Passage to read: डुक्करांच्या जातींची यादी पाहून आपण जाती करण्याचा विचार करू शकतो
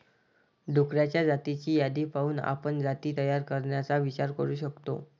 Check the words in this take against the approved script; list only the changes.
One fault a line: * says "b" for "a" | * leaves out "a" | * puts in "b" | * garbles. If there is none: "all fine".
* puts in "तयार"